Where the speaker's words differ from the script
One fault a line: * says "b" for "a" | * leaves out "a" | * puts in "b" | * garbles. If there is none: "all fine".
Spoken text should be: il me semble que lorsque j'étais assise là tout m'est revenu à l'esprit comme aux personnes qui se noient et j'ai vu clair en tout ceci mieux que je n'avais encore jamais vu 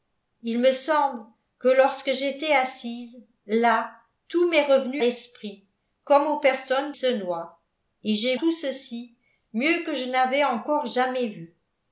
* leaves out "à"
* leaves out "qui"
* leaves out "vu clair en"